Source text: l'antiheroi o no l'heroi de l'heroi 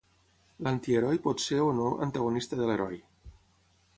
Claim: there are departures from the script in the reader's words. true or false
true